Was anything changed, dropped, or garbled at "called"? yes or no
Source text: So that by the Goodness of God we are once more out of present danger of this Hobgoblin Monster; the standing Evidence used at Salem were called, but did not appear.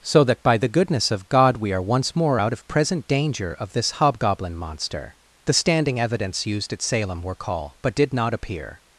yes